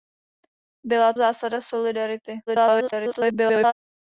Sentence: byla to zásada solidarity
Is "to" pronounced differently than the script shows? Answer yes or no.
yes